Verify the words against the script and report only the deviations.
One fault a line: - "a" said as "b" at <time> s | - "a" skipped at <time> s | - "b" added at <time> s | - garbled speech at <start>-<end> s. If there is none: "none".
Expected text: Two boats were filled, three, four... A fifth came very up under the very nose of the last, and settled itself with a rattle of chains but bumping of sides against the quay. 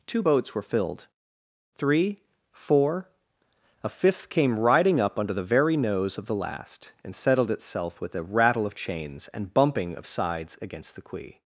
- "very" said as "riding" at 4.6 s
- "but" said as "and" at 9.3 s